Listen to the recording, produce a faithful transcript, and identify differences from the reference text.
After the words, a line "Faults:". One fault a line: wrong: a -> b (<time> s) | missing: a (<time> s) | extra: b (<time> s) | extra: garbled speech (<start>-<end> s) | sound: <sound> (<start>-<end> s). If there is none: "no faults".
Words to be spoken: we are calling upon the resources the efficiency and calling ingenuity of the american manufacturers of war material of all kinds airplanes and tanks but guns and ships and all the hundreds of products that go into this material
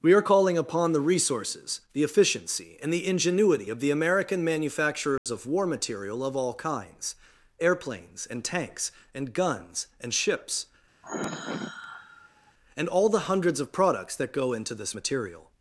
we are calling upon the resources the efficiency and the ingenuity of the american manufacturers of war material of all kinds airplanes and tanks and guns and ships and all the hundreds of products that go into this material
Faults:
wrong: calling -> the (2.9 s)
sound: dropout (5.2-5.3 s)
wrong: but -> and (9.1 s)
sound: sigh (11.0-12.5 s)